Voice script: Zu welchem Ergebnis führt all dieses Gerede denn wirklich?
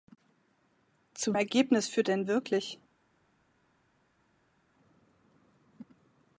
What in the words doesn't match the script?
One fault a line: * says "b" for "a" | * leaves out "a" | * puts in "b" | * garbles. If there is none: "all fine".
* leaves out "welchem"
* leaves out "all dieses Gerede"